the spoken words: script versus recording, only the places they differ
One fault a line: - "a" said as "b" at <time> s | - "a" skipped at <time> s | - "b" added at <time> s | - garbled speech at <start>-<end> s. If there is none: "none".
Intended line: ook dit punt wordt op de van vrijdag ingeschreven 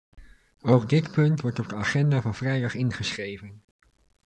- "agenda" added at 1.7 s